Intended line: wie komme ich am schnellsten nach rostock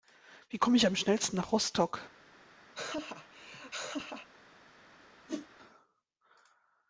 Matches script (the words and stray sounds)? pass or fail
fail